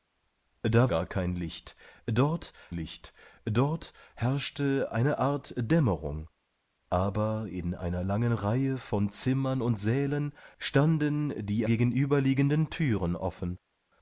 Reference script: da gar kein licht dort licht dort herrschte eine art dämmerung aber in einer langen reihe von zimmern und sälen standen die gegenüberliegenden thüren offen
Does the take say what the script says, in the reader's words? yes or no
yes